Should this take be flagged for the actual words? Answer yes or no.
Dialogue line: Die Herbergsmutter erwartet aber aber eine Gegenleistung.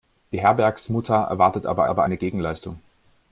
no